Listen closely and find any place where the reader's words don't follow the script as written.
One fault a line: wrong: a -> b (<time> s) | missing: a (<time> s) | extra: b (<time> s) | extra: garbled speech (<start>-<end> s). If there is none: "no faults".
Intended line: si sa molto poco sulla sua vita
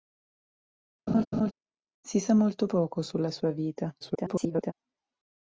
extra: garbled speech (4.0-4.7 s)